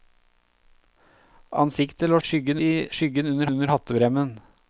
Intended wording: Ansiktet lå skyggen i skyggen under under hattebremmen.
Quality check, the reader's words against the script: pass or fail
pass